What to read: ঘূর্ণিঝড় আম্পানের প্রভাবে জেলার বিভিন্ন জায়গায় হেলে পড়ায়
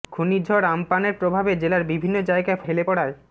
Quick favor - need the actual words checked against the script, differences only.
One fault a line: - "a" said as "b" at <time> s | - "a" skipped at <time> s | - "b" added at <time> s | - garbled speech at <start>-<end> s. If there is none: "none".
none